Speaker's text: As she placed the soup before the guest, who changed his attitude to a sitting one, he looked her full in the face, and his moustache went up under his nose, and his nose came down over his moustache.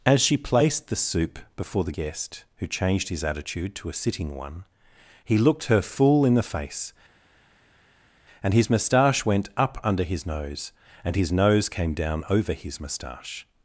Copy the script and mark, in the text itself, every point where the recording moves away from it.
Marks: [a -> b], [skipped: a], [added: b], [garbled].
As she placed the soup before the guest, who changed his attitude to a sitting one, he looked her full in the face, and his moustache went up under his nose, and his nose came down over his moustache.